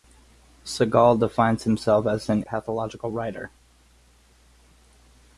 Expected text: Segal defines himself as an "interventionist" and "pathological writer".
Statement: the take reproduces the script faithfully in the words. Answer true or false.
false